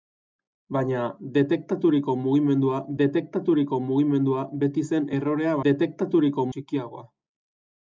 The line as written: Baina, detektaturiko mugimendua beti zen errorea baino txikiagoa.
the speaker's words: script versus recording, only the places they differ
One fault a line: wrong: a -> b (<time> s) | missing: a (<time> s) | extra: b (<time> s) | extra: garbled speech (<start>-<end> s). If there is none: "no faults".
extra: detektaturiko mugimendua (3.0 s)
wrong: baino -> detektaturiko (5.6 s)